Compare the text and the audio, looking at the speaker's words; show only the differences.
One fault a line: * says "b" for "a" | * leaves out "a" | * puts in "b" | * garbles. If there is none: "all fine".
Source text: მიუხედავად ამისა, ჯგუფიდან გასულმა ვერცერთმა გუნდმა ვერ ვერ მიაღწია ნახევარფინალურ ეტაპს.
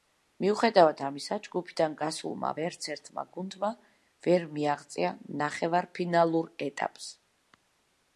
* leaves out "ვერ"